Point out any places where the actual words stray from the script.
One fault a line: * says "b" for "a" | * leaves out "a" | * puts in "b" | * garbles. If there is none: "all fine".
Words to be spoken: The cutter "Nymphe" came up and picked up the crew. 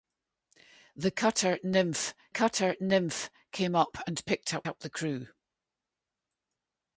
* puts in "cutter Nymphe"
* puts in "up"